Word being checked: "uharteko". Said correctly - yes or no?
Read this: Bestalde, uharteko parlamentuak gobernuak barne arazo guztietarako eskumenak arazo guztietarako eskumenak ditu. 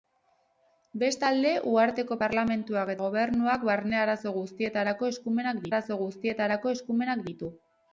yes